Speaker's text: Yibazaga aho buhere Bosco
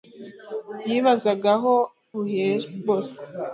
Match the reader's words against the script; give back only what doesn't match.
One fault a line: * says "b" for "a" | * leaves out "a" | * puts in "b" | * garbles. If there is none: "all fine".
all fine